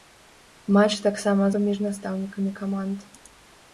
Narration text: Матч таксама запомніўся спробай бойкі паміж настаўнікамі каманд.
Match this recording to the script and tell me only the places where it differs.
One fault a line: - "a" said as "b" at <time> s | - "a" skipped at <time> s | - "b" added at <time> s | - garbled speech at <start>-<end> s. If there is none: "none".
- "запомніўся спробай бойкі" skipped at 1.5 s